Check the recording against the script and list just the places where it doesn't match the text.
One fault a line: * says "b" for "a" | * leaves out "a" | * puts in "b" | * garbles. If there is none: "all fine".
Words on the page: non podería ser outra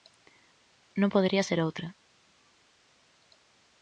all fine